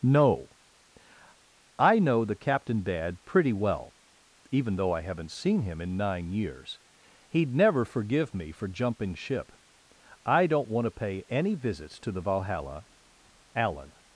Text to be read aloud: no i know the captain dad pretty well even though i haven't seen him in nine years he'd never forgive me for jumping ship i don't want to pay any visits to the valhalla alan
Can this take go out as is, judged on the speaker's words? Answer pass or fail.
pass